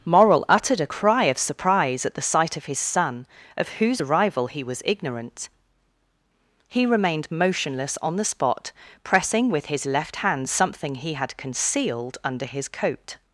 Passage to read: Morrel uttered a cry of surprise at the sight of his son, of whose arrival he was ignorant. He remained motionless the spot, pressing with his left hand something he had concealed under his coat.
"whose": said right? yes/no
yes